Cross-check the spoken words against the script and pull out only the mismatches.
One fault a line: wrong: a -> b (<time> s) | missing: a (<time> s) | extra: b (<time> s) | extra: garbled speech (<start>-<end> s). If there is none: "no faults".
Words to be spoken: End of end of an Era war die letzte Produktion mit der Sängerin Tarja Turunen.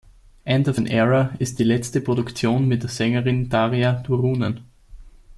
missing: end of (0.8 s)
wrong: war -> ist (1.4 s)